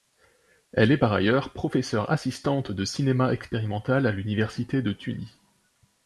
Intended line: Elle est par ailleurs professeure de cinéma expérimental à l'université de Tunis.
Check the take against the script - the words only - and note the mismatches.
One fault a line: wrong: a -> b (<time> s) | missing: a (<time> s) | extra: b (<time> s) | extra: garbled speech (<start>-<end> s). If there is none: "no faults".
extra: assistante (2.1 s)